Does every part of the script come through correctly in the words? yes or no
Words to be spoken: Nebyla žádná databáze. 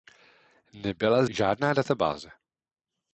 yes